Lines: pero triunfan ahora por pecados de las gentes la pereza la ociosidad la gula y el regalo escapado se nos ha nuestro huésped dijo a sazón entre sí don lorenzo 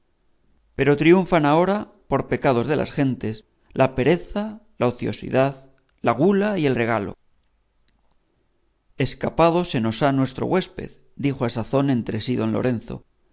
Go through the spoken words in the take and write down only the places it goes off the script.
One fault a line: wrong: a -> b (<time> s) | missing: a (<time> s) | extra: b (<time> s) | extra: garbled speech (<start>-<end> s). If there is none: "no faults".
no faults